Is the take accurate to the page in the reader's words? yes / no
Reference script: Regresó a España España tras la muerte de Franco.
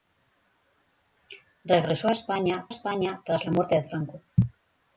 yes